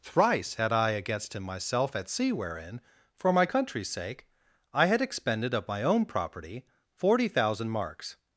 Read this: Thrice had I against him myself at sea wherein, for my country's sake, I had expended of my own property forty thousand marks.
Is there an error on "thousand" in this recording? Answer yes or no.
no